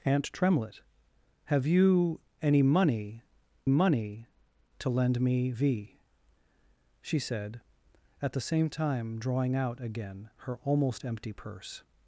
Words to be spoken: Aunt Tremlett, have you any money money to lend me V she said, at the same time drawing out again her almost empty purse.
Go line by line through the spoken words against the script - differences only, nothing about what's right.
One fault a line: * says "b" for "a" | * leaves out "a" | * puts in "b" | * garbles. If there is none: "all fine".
all fine